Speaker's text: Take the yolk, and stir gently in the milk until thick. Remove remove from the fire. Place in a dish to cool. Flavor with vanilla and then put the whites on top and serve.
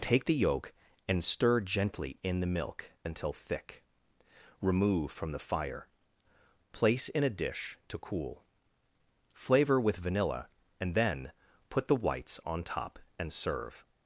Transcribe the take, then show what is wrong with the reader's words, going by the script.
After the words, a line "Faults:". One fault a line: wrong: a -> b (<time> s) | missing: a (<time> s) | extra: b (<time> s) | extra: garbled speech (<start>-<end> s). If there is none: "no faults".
Take the yolk, and stir gently in the milk until thick. Remove from the fire. Place in a dish to cool. Flavor with vanilla and then put the whites on top and serve.
Faults:
missing: remove (5.1 s)